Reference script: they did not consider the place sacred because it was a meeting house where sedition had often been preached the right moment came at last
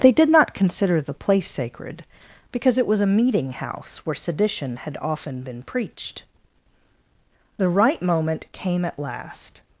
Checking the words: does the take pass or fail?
pass